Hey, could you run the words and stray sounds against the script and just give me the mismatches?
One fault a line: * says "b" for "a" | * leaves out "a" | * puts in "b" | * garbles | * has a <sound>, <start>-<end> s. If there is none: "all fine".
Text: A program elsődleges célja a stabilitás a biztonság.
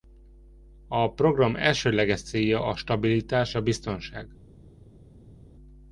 all fine